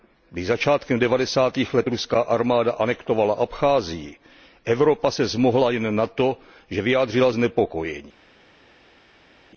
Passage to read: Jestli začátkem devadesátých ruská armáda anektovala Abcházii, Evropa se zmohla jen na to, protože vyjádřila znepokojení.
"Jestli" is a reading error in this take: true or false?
true